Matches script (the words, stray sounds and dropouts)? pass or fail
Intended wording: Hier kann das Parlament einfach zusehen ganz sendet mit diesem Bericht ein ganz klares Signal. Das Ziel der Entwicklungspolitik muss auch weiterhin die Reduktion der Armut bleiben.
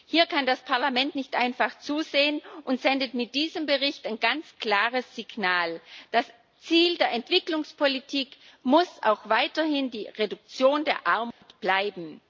fail